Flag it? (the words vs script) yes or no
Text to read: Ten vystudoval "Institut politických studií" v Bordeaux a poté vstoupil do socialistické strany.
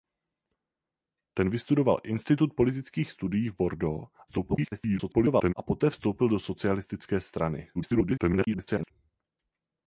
yes